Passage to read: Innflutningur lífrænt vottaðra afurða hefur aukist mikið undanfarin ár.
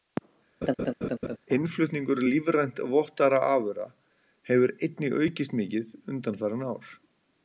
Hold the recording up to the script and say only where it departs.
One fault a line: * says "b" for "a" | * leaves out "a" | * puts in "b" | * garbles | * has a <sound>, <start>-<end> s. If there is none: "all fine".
* has a laugh, 0.6-1.4 s
* puts in "einnig"